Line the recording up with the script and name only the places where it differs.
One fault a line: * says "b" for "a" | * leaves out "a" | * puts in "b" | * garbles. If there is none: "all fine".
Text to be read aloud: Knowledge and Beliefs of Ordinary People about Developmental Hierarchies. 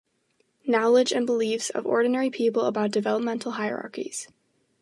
all fine